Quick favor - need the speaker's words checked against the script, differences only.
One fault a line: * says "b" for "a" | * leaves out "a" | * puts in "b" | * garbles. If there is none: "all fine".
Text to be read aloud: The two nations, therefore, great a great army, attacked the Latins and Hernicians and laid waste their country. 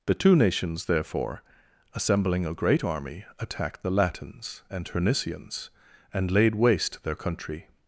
* says "assembling" for "great"